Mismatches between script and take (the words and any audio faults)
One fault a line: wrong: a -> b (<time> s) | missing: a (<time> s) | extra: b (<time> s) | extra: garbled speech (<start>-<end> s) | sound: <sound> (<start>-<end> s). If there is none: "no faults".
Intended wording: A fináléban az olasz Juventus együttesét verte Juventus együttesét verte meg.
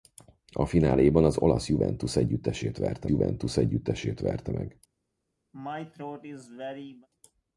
sound: throat clearing (5.5-7.1 s)